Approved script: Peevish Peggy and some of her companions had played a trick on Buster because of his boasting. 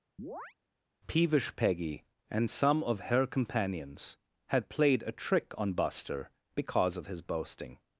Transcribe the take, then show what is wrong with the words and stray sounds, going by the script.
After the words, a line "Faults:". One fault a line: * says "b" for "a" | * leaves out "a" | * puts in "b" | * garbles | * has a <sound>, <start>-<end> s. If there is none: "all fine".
Peevish Peggy and some of her companions had played a trick on Buster because of his boasting.
Faults:
* has a chirp, 0.2-0.5 s